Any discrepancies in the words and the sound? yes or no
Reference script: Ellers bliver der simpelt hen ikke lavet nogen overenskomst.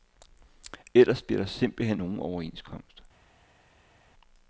yes